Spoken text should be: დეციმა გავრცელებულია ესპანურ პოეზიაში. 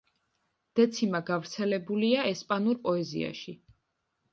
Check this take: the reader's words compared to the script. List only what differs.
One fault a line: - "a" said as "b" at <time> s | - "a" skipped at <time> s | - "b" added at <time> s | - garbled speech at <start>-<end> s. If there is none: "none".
none